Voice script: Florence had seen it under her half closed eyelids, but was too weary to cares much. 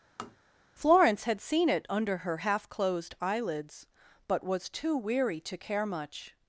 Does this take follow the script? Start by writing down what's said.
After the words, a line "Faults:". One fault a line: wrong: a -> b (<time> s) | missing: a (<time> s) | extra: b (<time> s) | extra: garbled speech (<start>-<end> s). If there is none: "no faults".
Florence had seen it under her half closed eyelids, but was too weary to care much.
Faults:
wrong: cares -> care (5.6 s)